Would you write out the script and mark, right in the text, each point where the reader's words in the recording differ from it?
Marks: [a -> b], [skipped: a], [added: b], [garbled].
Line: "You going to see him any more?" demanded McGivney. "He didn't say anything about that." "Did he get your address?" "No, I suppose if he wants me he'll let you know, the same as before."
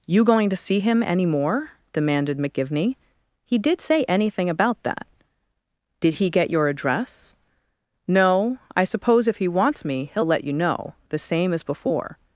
"You going to see him any more?" demanded McGivney. "He [didn't -> did] say anything about that." "Did he get your address?" "No, I suppose if he wants me he'll let you know, the same as before."